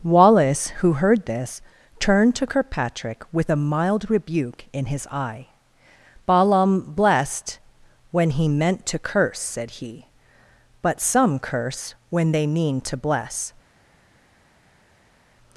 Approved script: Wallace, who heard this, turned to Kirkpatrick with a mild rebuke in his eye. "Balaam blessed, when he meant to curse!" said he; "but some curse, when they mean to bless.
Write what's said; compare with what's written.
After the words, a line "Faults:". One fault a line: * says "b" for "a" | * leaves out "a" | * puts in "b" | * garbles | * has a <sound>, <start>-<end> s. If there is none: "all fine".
Wallace, who heard this, turned to Kirkpatrick with a mild rebuke in his eye. "Balaam blessed, when he meant to curse!" said he; "but some curse, when they mean to bless.
Faults:
all fine